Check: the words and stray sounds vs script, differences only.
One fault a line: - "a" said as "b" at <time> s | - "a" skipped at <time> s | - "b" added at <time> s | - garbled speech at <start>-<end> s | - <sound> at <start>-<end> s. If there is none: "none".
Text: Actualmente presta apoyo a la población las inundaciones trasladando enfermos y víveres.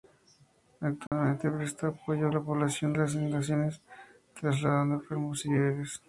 - dropout at 1.1-1.1 s